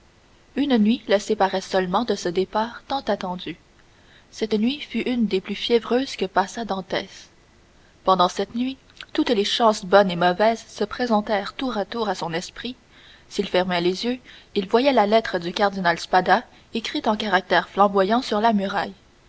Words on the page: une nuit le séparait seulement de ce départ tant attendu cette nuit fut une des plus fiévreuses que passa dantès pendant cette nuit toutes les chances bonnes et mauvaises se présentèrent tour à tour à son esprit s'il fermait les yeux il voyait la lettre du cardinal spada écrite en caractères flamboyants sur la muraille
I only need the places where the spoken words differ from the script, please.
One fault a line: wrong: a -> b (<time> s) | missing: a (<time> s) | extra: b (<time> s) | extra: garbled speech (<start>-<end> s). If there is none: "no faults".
no faults